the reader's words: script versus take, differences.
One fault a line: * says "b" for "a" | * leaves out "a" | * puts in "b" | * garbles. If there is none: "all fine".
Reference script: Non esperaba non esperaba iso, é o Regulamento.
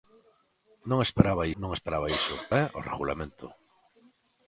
all fine